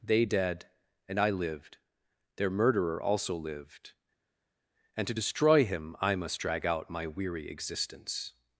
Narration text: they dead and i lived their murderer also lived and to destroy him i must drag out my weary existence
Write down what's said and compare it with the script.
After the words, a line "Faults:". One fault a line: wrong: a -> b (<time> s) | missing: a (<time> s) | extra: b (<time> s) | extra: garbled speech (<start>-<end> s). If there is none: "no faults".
they dead and i lived their murderer also lived and to destroy him i must drag out my weary existence
Faults:
no faults